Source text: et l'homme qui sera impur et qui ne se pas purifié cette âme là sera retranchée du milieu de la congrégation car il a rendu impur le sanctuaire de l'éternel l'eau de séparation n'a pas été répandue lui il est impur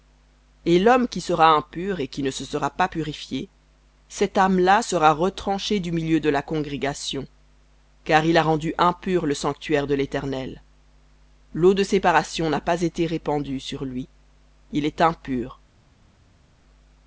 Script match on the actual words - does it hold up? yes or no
no